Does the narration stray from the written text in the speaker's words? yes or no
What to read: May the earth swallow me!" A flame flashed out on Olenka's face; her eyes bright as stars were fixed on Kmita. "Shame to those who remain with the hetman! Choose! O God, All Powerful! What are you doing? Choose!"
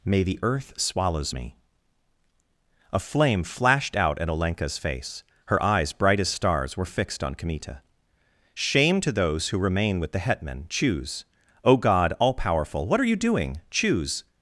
yes